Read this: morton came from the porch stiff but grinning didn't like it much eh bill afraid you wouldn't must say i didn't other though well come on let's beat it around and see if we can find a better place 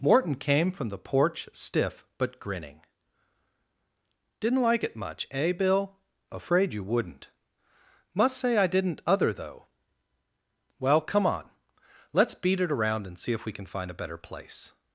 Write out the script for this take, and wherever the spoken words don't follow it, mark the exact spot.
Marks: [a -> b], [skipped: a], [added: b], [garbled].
morton came from the porch stiff but grinning didn't like it much eh bill afraid you wouldn't must say i didn't other though well come on let's beat it around and see if we can find a better place